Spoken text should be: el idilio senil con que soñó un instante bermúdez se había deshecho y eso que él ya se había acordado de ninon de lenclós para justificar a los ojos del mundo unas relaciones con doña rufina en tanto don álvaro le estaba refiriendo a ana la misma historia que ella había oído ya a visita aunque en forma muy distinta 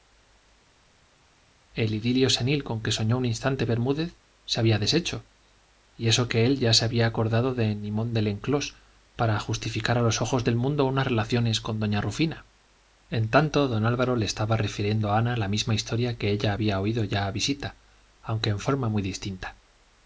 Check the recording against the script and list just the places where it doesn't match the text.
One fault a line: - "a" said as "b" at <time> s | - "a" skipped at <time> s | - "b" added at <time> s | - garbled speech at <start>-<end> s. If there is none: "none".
none